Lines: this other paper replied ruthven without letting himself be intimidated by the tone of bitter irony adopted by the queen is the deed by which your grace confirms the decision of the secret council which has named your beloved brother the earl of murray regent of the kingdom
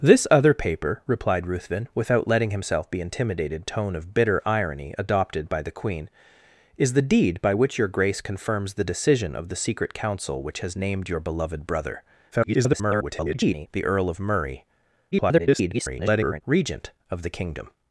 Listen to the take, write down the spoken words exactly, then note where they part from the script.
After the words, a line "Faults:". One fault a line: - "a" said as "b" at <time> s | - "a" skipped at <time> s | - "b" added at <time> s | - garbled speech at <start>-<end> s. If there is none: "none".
this other paper replied ruthven without letting himself be intimidated tone of bitter irony adopted by the queen is the deed by which your grace confirms the decision of the secret council which has named your beloved brother [garbled] the earl of murray [garbled] regent of the kingdom
Faults:
- "by the" skipped at 3.7 s
- garbled speech at 12.3-13.7 s
- garbled speech at 15.1-16.4 s